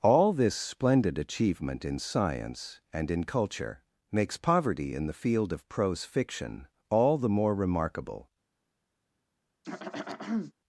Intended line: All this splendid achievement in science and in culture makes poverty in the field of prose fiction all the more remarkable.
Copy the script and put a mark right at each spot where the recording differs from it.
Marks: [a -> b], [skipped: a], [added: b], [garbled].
All this splendid achievement in science and in culture makes poverty in the field of prose fiction all the more remarkable.